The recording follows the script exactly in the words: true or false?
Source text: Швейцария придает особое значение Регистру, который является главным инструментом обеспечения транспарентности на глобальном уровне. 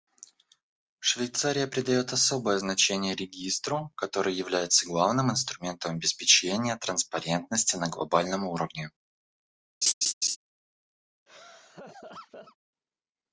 true